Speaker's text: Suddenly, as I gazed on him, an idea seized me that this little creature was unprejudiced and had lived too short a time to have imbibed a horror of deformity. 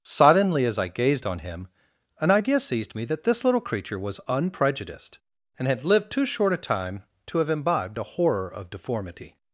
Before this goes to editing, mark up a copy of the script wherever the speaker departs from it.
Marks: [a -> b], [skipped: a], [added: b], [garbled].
Suddenly, as I gazed on him, an idea seized me that this little creature was unprejudiced and had lived too short a time to have imbibed a horror of deformity.